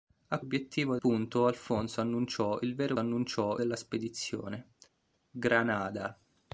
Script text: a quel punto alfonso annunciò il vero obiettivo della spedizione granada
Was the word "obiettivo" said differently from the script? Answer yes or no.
yes